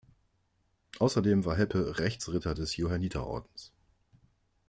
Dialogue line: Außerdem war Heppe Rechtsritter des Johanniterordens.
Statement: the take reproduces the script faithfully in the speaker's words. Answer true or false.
true